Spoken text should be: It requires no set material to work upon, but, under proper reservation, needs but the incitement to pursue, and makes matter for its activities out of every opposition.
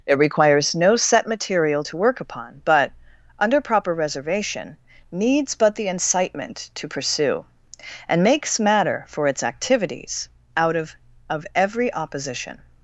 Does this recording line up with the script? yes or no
no